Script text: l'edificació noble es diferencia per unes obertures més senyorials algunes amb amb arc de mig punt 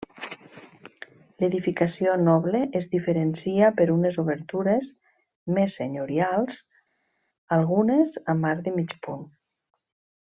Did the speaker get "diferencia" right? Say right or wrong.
right